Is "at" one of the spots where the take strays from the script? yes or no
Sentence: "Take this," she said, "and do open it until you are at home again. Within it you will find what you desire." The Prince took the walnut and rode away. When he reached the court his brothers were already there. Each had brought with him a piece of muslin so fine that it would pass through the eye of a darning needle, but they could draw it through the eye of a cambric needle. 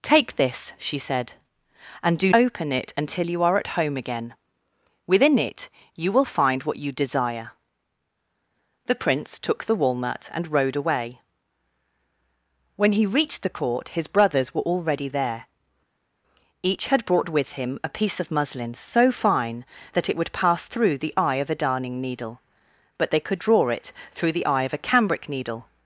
no